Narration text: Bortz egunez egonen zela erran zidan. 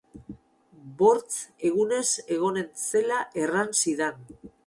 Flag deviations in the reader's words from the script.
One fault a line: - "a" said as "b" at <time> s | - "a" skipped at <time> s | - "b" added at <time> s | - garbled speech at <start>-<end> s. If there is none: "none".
none